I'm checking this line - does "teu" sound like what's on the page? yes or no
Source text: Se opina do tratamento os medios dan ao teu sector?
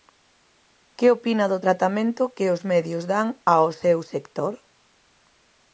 no